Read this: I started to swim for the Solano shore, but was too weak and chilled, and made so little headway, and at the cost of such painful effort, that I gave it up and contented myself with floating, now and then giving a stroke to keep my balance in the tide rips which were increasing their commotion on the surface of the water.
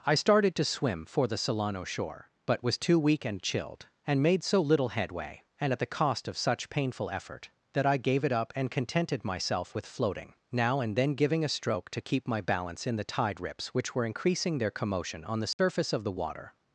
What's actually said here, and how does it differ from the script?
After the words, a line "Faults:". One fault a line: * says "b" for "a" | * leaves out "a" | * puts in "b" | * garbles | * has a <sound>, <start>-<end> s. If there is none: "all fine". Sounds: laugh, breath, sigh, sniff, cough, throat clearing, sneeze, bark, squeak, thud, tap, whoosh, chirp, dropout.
I started to swim for the Solano shore, but was too weak and chilled, and made so little headway, and at the cost of such painful effort, that I gave it up and contented myself with floating, now and then giving a stroke to keep my balance in the tide rips which were increasing their commotion on the surface of the water.
Faults:
* has a dropout, 15.5-15.6 s